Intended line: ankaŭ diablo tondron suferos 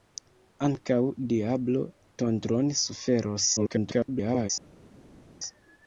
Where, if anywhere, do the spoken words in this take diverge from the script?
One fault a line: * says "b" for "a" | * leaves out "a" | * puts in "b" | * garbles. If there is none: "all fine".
* garbles